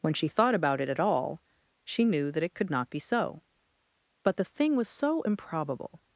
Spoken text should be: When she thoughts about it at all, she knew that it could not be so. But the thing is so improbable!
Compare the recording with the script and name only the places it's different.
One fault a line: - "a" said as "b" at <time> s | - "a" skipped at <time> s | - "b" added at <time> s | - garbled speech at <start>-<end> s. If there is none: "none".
- "thoughts" said as "thought" at 0.3 s
- "is" said as "was" at 4.7 s